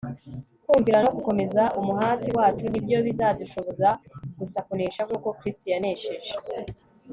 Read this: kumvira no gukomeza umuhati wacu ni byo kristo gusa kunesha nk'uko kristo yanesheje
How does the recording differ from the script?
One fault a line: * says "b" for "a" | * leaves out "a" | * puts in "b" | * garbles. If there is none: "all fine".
* says "bizadushoboza" for "kristo"